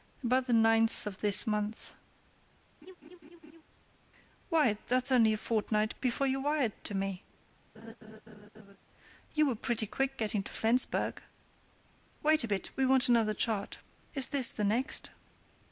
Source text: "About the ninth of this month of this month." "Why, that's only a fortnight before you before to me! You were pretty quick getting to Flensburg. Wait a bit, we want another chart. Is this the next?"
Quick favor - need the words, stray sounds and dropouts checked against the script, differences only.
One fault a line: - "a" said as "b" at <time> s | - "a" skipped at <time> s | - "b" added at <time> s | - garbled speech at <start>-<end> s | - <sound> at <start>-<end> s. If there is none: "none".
- "of this month" skipped at 1.9 s
- laugh at 2.8-3.6 s
- "before" said as "wired" at 6.4 s
- laugh at 7.7-8.8 s